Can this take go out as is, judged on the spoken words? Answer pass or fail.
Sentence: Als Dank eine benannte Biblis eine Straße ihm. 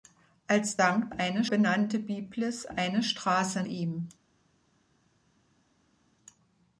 pass